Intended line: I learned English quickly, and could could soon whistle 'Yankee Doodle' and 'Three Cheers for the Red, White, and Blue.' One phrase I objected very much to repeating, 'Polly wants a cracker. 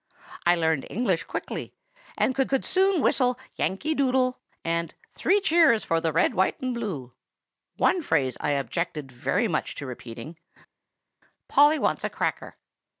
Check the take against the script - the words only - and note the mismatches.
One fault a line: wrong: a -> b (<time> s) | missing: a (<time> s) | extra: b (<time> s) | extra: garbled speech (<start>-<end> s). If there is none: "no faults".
no faults